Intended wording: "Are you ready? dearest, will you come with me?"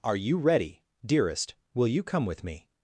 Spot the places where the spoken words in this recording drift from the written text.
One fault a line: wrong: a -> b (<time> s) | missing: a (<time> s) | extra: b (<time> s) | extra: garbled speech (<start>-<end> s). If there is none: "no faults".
no faults